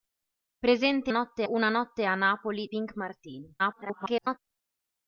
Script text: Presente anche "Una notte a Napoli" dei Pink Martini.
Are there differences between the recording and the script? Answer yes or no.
yes